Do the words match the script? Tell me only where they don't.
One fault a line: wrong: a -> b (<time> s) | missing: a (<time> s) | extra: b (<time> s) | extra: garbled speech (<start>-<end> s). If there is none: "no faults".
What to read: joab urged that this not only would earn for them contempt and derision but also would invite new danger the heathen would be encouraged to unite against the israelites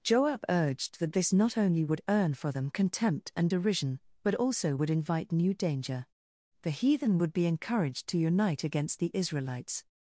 no faults